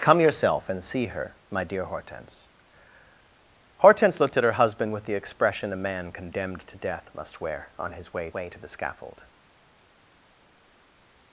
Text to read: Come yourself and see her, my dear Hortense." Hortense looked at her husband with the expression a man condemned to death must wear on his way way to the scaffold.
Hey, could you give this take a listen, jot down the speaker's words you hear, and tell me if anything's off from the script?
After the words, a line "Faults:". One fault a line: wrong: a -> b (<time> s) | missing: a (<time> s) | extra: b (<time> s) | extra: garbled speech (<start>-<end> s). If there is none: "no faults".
Come yourself and see her, my dear Hortense." Hortense looked at her husband with the expression a man condemned to death must wear on his way way to the scaffold.
Faults:
no faults